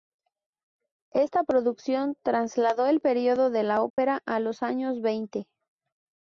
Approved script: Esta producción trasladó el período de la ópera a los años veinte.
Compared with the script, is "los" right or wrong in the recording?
right